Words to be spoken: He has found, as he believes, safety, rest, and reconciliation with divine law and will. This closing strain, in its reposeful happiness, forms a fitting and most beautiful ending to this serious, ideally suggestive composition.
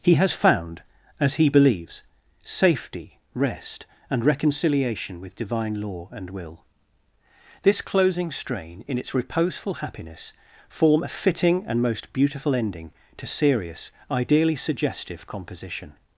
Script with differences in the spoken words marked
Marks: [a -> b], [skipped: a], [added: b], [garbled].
He has found, as he believes, safety, rest, and reconciliation with divine law and will. This closing strain, in its reposeful happiness, [forms -> form] a fitting and most beautiful ending to [skipped: this] serious, ideally suggestive composition.